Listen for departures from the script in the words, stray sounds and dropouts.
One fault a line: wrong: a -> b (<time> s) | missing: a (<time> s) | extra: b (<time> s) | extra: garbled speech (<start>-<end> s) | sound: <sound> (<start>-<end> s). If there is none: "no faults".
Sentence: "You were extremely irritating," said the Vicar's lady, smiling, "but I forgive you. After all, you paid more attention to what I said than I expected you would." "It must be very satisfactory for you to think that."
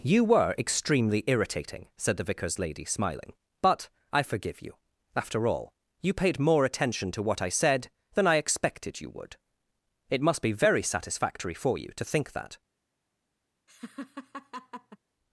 sound: laugh (13.7-15.0 s)